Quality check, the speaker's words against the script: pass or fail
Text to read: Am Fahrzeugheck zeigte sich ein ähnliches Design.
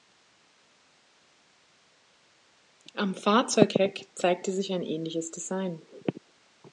pass